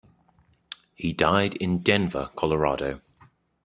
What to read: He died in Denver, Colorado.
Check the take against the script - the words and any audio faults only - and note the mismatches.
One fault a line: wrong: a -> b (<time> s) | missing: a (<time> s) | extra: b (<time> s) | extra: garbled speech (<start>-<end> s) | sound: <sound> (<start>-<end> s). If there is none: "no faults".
no faults